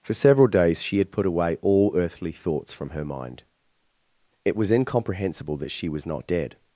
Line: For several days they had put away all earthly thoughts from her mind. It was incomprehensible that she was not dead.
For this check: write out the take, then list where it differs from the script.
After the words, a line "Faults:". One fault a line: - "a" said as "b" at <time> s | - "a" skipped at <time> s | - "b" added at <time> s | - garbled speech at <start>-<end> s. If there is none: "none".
For several days she had put away all earthly thoughts from her mind. It was incomprehensible that she was not dead.
Faults:
- "they" said as "she" at 0.8 s